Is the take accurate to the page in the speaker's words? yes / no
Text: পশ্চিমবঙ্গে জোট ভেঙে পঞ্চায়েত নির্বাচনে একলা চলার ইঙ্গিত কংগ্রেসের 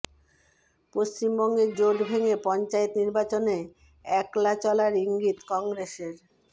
yes